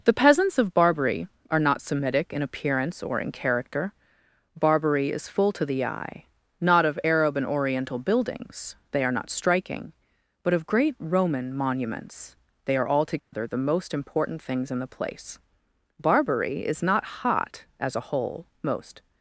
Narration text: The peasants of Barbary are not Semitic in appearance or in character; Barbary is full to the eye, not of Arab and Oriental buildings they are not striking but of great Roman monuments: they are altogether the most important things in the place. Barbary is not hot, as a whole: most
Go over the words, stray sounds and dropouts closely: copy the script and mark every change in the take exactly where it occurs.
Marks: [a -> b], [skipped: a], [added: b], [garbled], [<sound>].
The peasants of Barbary are not Semitic in appearance or in character; Barbary is full to the eye, not of Arab and Oriental buildings they are not striking but of great Roman monuments: they are altogether [dropout] the most important things in the place. Barbary is not hot, as a whole: most